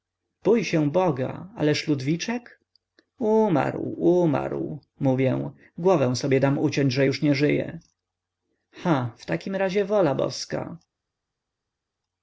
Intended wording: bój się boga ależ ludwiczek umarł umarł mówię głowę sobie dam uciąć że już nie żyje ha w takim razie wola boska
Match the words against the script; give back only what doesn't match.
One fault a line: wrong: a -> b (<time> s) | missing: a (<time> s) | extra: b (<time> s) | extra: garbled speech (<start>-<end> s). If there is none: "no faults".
no faults